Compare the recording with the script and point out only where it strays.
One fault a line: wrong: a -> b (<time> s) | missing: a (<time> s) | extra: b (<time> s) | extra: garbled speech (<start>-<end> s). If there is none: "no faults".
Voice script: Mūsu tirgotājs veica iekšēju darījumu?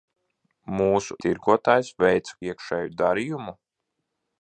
no faults